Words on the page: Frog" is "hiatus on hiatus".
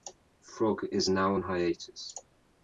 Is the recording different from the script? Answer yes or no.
yes